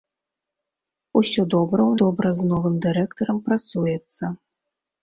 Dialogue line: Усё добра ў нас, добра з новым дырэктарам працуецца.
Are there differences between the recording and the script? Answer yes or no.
yes